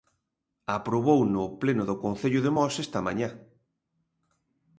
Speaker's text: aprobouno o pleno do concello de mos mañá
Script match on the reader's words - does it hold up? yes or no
no